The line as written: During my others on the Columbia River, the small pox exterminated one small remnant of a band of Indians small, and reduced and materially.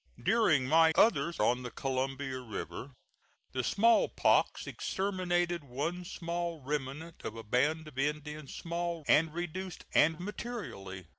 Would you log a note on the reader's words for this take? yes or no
no